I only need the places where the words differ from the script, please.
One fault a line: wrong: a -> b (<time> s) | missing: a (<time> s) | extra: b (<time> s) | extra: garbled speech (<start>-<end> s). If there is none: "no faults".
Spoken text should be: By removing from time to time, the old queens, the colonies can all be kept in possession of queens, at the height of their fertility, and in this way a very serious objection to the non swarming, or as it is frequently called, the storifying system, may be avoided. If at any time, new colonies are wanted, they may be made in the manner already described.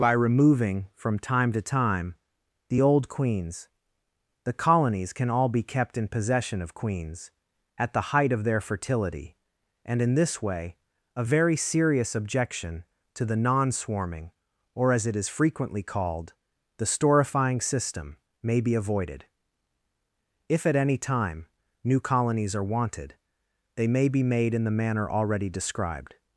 no faults